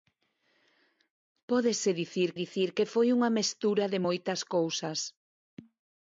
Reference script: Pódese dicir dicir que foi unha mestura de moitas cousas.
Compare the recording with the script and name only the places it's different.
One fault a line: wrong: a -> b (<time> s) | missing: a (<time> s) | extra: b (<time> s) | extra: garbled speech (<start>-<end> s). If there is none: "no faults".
no faults